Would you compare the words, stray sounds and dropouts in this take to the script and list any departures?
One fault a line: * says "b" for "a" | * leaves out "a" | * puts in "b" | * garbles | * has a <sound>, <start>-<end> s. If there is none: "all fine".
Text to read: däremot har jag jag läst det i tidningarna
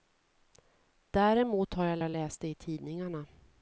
all fine